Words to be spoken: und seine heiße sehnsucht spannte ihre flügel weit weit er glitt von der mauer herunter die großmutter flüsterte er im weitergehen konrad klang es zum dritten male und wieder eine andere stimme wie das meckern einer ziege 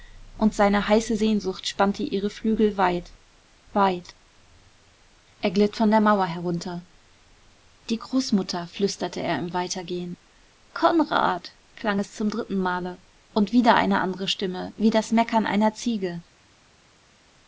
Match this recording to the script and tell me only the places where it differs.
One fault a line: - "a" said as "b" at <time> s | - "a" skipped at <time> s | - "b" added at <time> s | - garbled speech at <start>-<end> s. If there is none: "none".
none